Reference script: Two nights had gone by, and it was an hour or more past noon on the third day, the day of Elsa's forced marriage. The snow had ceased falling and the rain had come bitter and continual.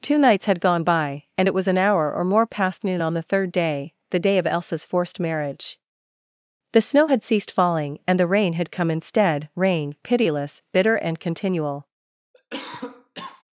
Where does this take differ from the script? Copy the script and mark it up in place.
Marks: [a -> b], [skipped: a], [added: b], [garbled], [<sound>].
Two nights had gone by, and it was an hour or more past noon on the third day, the day of Elsa's forced marriage. The snow had ceased falling and the rain had come [added: instead rain pitiless] bitter and continual. [cough]